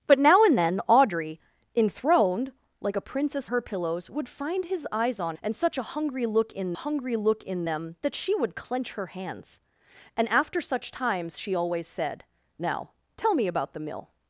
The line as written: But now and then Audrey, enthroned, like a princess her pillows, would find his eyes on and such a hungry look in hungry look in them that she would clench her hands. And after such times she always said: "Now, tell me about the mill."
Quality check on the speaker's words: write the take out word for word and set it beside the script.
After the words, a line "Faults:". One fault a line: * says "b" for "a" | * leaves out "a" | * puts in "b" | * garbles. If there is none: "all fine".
But now and then Audrey, enthroned, like a princess her pillows, would find his eyes on and such a hungry look in hungry look in them that she would clench her hands. And after such times she always said: "Now, tell me about the mill."
Faults:
all fine